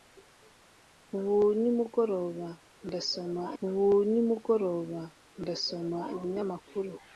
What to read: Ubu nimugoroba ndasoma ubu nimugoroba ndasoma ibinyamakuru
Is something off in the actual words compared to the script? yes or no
no